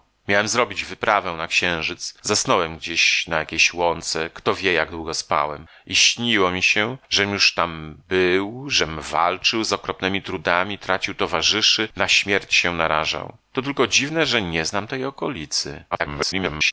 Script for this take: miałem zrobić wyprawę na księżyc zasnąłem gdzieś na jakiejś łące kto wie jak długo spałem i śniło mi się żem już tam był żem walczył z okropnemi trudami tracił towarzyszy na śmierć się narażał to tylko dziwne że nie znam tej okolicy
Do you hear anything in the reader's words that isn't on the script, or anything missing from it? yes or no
yes